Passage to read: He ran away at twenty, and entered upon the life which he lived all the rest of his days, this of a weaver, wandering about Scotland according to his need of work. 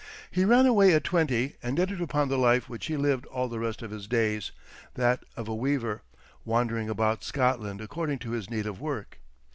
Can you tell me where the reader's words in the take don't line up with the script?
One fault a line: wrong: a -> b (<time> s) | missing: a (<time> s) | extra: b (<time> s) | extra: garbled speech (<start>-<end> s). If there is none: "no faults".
wrong: this -> that (5.0 s)